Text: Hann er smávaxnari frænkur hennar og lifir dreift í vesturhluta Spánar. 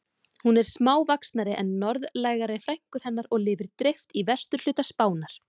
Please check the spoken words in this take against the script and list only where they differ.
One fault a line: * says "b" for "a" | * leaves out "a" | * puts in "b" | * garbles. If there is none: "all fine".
* says "Hún" for "Hann"
* puts in "en norðlægari"